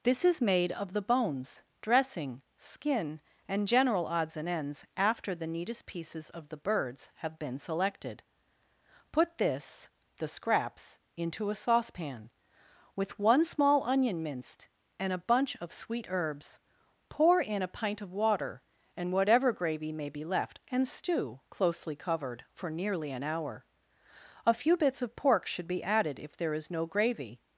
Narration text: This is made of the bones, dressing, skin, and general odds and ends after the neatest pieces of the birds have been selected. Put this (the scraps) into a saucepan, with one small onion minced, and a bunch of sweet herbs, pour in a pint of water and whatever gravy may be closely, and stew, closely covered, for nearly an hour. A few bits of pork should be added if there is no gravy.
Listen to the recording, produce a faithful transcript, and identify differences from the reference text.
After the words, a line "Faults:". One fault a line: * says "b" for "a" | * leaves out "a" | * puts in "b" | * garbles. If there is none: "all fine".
This is made of the bones, dressing, skin, and general odds and ends after the neatest pieces of the birds have been selected. Put this (the scraps) into a saucepan, with one small onion minced, and a bunch of sweet herbs, pour in a pint of water and whatever gravy may be left, and stew, closely covered, for nearly an hour. A few bits of pork should be added if there is no gravy.
Faults:
* says "left" for "closely"